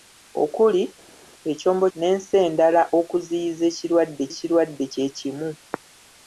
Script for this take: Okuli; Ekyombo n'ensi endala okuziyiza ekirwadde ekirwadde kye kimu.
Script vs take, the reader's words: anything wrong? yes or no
no